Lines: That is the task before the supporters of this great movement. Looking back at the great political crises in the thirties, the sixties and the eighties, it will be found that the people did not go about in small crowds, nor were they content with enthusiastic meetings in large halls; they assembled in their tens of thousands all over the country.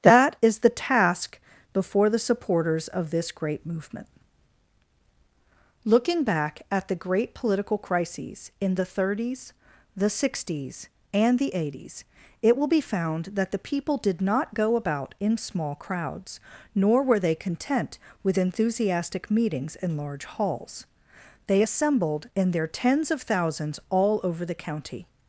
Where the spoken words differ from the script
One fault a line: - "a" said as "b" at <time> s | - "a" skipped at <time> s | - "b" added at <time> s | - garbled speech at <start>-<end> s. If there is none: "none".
- "country" said as "county" at 24.5 s